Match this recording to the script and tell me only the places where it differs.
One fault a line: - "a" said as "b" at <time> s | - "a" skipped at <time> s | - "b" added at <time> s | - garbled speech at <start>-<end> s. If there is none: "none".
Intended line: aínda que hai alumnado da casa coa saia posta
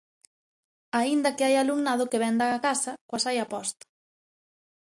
- "que vén" added at 2.1 s